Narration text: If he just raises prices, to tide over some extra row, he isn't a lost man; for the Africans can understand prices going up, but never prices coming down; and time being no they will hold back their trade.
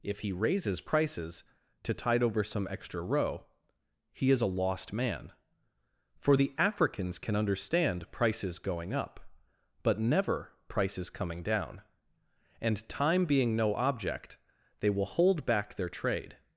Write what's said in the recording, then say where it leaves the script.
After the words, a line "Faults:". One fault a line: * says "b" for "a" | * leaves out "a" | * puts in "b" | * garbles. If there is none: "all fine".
If he raises prices, to tide over some extra row, he is a lost man; for the Africans can understand prices going up, but never prices coming down; and time being no object, they will hold back their trade.
Faults:
* leaves out "just"
* says "is" for "isn't"
* puts in "object"